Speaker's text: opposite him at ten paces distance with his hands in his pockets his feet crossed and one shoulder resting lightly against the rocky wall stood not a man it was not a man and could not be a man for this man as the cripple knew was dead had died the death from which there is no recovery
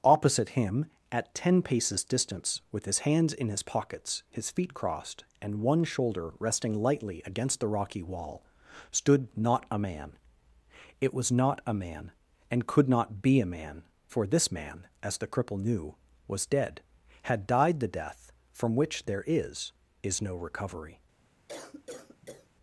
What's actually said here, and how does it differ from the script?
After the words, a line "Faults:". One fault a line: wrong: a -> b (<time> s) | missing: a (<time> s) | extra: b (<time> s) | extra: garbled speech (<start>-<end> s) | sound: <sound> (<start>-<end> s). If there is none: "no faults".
opposite him at ten paces distance with his hands in his pockets his feet crossed and one shoulder resting lightly against the rocky wall stood not a man it was not a man and could not be a man for this man as the cripple knew was dead had died the death from which there is is no recovery
Faults:
extra: is (20.0 s)
sound: cough (21.5-22.5 s)